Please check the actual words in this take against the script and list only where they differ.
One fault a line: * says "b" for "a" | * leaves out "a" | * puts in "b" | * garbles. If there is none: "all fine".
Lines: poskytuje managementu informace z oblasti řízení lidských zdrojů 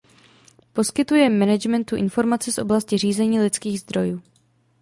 all fine